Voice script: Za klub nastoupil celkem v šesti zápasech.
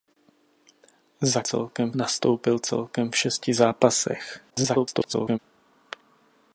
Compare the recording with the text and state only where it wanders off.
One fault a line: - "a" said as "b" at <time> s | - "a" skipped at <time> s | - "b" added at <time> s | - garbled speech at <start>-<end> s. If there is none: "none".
- "klub" said as "celkem" at 1.4 s
- garbled speech at 4.5-5.4 s